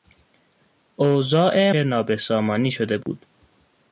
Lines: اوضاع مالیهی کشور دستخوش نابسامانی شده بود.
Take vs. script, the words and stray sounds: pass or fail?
fail